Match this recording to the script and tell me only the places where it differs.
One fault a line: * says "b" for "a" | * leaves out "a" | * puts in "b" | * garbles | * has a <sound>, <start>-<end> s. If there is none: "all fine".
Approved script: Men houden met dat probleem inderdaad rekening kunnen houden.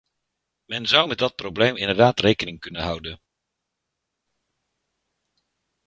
* says "zou" for "houden"